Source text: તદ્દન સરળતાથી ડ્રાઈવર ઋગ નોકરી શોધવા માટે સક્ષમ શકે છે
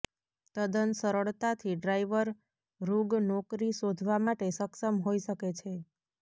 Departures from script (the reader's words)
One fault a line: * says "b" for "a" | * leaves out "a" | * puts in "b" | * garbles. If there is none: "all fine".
* puts in "હોઈ"